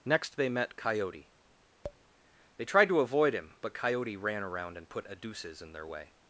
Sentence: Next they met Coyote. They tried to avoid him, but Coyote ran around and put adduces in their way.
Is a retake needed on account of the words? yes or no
no